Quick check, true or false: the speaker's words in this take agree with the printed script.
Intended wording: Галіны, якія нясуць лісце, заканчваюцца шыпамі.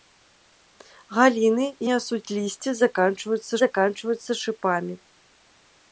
false